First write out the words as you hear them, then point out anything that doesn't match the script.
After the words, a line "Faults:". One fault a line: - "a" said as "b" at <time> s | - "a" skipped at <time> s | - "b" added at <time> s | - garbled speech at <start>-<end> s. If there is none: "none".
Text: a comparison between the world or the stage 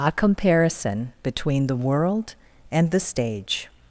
a comparison between the world and the stage
Faults:
- "or" said as "and" at 2.7 s